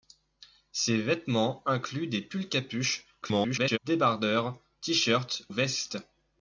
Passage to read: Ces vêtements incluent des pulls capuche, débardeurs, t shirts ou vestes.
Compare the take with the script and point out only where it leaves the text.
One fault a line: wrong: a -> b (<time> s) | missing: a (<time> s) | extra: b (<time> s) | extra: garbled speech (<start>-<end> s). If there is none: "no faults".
extra: garbled speech (3.2-3.8 s)
missing: ou (5.4 s)